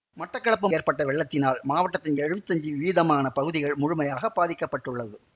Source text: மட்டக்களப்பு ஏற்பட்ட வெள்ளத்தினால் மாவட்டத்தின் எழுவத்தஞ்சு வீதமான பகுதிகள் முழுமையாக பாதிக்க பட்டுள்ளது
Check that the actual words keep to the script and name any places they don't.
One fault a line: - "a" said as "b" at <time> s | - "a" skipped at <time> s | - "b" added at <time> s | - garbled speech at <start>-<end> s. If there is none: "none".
none